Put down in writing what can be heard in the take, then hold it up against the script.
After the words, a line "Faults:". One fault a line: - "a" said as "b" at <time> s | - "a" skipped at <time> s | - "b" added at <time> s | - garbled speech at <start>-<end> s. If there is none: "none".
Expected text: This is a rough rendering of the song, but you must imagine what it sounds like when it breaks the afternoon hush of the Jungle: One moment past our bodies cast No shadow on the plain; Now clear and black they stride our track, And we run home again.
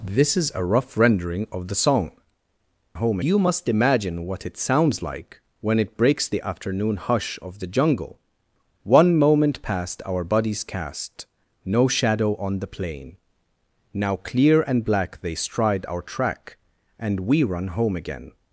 This is a rough rendering of the song, home you must imagine what it sounds like when it breaks the afternoon hush of the Jungle: One moment past our bodies cast No shadow on the plain; Now clear and black they stride our track, And we run home again.
Faults:
- "but" said as "home" at 2.9 s